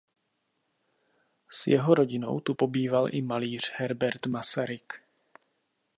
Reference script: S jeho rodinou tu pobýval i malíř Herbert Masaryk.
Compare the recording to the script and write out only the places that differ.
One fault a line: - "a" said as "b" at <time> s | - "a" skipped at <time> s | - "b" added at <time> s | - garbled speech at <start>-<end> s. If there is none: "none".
none